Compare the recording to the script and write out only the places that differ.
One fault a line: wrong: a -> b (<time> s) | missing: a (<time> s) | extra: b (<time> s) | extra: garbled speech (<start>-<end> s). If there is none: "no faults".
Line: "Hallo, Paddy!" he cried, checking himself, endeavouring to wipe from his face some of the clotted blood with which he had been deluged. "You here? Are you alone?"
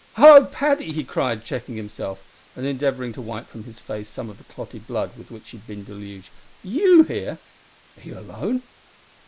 extra: and (2.5 s)